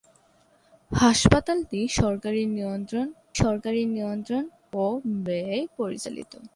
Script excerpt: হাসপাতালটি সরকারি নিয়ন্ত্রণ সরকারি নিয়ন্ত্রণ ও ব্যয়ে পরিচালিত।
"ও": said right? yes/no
yes